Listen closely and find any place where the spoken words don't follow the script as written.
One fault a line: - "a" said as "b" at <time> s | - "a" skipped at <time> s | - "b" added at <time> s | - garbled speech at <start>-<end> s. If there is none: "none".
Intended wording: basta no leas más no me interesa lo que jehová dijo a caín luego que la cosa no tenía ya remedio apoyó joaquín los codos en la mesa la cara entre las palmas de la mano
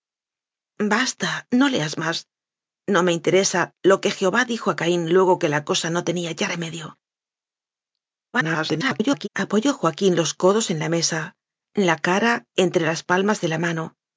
- garbled speech at 8.3-9.3 s